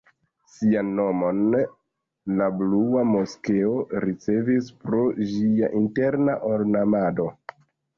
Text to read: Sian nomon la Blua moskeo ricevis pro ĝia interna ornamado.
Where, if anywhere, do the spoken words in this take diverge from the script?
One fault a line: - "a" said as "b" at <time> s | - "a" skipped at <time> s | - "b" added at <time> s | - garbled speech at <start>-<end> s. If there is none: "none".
none